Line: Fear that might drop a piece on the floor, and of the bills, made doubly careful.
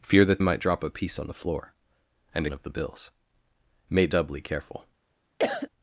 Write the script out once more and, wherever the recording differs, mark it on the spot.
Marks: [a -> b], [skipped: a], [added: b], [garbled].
Fear that might drop a piece on the floor, and of the bills, made doubly careful.